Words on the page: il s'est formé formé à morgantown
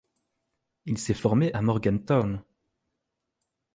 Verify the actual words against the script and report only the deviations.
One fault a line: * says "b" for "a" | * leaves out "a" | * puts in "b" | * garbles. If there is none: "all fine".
* leaves out "formé"